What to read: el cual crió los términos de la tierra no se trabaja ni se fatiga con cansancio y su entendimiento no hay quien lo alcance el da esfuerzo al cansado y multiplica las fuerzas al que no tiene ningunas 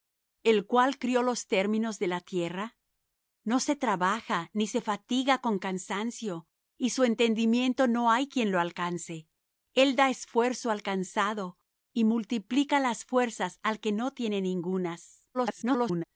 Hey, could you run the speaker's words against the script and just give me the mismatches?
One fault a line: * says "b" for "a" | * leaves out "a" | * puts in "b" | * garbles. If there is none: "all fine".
* garbles